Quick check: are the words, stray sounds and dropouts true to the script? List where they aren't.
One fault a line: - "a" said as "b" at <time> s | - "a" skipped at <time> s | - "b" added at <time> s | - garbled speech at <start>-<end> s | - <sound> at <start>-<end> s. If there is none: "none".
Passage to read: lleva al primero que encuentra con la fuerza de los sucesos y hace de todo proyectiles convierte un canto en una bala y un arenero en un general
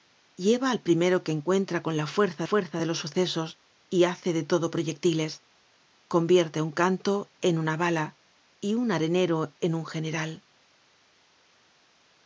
- "fuerza" added at 2.4 s